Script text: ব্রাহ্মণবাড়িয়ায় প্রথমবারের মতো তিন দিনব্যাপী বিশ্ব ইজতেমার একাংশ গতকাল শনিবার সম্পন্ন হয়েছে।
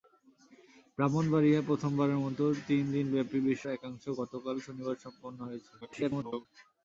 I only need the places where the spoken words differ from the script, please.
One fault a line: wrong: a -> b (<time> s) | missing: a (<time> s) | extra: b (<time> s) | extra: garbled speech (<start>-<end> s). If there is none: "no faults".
missing: ইজতেমার (3.6 s)
extra: garbled speech (5.8-6.5 s)